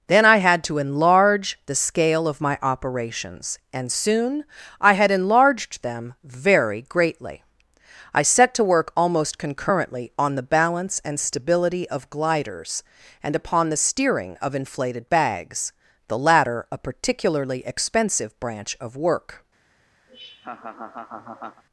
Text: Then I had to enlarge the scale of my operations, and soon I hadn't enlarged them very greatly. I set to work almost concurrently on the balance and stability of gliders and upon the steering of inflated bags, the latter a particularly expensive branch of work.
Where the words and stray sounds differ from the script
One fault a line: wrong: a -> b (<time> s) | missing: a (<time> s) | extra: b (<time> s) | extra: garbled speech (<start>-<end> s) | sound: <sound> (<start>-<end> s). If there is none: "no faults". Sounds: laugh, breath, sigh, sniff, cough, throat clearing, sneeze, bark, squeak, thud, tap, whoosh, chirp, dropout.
wrong: hadn't -> had (4.9 s)
sound: laugh (20.1-21.6 s)